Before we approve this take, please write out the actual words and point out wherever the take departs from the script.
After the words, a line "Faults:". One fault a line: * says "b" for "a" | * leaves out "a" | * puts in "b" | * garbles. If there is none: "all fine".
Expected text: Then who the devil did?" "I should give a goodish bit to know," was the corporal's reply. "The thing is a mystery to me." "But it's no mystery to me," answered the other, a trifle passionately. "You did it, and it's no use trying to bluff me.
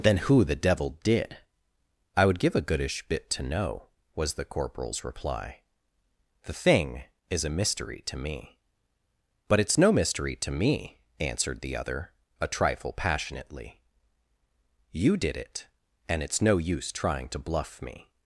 Then who the devil did?" "I would give a goodish bit to know," was the corporal's reply. "The thing is a mystery to me." "But it's no mystery to me," answered the other, a trifle passionately. "You did it, and it's no use trying to bluff me.
Faults:
* says "would" for "should"